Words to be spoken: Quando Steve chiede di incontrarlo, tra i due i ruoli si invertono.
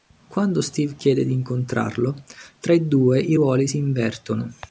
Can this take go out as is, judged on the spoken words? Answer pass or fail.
pass